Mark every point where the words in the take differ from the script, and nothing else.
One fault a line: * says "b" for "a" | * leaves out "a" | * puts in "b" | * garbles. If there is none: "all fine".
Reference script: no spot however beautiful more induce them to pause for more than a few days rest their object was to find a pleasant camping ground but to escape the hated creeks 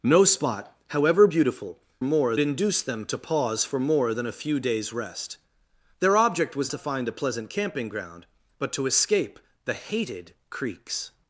all fine